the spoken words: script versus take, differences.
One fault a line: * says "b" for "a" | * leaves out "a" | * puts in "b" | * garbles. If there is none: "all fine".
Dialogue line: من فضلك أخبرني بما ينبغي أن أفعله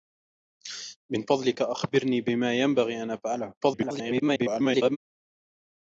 * garbles